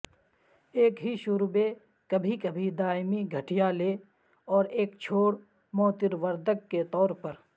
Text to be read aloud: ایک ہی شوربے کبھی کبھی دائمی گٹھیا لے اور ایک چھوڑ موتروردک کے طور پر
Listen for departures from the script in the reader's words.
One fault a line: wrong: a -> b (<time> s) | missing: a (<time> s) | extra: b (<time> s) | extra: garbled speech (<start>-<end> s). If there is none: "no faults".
no faults